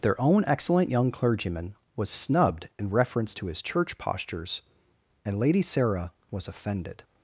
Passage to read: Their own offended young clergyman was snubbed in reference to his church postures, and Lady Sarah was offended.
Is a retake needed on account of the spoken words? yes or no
yes